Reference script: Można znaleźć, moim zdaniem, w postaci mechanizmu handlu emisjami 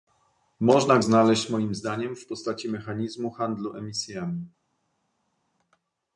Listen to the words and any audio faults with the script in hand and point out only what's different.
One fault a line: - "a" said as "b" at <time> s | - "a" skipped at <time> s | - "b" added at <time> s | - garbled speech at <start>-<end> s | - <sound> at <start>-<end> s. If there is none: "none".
none